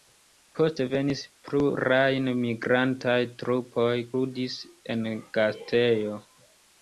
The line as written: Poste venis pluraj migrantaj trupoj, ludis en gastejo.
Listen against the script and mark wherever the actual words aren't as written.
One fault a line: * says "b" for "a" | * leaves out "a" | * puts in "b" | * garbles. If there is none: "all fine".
all fine